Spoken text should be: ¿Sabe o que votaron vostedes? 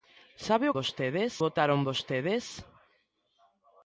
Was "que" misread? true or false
true